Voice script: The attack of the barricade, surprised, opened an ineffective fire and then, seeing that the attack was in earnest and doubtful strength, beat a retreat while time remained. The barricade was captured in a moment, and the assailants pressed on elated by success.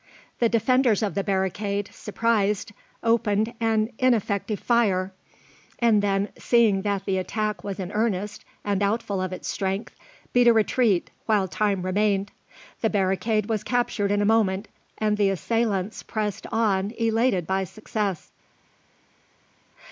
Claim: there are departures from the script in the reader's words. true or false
true